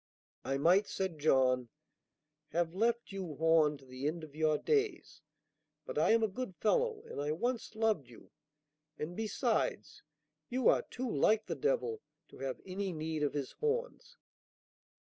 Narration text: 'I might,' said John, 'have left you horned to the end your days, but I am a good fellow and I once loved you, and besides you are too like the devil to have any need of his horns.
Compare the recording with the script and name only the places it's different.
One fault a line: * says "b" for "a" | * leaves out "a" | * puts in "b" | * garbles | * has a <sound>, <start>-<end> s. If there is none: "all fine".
* puts in "of"